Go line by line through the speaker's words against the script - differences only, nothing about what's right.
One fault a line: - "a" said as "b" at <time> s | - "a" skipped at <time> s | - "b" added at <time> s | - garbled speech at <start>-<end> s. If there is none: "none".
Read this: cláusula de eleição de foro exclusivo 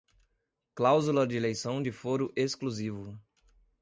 none